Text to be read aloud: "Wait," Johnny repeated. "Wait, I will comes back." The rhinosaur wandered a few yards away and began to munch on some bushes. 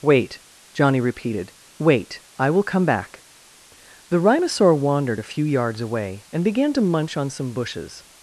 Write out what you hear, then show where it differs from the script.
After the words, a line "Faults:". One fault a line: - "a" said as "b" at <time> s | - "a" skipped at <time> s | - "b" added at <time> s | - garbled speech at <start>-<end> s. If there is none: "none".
"Wait," Johnny repeated. "Wait, I will come back." The rhinosaur wandered a few yards away and began to munch on some bushes.
Faults:
- "comes" said as "come" at 2.6 s